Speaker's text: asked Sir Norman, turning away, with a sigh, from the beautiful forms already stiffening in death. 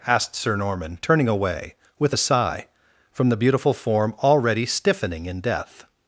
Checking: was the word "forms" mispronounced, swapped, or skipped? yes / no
yes